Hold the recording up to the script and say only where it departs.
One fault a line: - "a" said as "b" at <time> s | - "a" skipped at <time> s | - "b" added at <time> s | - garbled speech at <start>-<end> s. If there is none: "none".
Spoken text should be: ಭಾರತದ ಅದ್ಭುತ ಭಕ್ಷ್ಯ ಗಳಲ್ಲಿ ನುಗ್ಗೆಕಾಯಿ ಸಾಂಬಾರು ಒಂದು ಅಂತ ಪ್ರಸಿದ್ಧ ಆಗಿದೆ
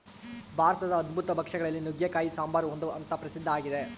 none